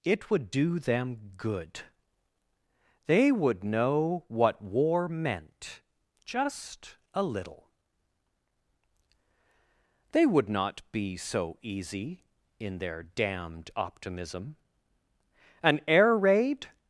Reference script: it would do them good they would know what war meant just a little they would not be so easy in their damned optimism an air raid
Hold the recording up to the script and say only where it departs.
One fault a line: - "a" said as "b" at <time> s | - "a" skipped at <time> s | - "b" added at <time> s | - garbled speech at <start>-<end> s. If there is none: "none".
none